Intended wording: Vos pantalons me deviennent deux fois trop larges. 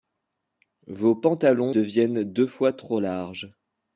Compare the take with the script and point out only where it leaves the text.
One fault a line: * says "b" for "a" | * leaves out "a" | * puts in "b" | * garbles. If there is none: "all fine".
* leaves out "me"